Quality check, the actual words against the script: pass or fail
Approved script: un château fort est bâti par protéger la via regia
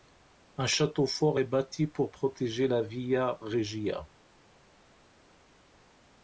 fail